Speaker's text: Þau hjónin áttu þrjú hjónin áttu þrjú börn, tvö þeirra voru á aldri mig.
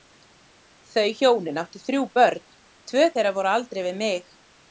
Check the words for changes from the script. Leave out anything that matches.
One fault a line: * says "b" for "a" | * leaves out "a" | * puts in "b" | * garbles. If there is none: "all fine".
* leaves out "hjónin áttu þrjú"
* puts in "við"